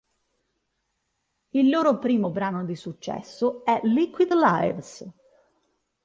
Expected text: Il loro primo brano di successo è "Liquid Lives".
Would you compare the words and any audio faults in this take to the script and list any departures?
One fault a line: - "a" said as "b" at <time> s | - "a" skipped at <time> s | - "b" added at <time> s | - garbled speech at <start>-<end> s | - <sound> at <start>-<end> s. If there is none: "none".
none